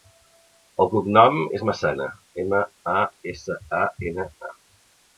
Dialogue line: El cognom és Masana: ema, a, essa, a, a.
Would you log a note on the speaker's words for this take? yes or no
yes